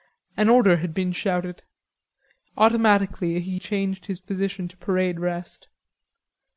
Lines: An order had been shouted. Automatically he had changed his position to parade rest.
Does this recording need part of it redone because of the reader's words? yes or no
yes